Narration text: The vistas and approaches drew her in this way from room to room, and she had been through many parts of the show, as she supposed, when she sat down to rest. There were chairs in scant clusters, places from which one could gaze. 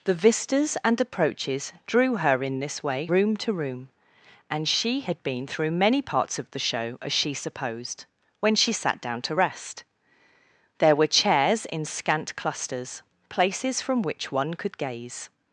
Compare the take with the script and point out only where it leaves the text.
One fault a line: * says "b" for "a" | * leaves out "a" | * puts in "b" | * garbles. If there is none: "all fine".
* leaves out "from"